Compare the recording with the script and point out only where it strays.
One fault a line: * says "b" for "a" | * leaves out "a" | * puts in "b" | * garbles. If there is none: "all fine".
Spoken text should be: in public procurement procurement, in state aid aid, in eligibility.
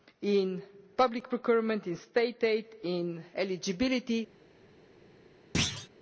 * leaves out "procurement"
* leaves out "aid"